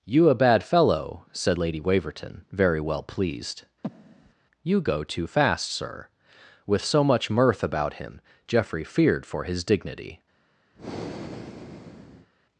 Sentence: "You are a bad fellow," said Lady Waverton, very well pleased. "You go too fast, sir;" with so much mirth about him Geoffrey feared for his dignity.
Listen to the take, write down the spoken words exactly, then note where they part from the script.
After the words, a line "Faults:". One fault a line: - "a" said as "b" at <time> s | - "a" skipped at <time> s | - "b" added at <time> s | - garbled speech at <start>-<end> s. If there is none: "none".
"You a bad fellow," said Lady Waverton, very well pleased. "You go too fast, sir;" with so much mirth about him Geoffrey feared for his dignity.
Faults:
- "are" skipped at 0.3 s